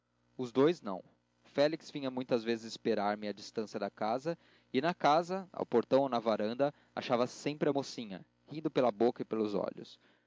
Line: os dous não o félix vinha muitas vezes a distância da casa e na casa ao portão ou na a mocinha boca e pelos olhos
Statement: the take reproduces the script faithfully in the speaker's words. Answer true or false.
false